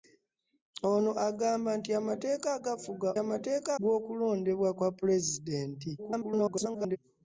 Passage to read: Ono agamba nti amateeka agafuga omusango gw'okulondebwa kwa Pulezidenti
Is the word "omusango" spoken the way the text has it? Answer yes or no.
no